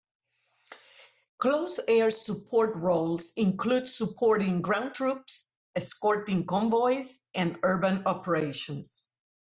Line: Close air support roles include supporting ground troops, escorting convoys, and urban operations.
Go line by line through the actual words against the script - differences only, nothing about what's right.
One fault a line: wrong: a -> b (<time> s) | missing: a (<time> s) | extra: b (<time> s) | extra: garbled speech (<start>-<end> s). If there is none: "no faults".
no faults